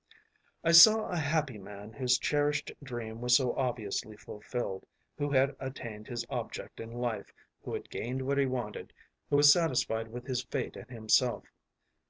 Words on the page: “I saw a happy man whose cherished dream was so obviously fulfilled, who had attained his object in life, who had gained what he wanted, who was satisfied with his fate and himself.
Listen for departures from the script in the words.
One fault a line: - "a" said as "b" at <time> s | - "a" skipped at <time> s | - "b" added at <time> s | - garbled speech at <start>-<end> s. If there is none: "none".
none